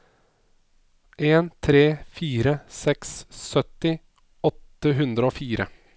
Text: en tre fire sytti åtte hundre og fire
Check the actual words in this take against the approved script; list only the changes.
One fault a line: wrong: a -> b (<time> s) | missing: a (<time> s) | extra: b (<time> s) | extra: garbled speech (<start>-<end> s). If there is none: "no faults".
extra: seks (2.8 s)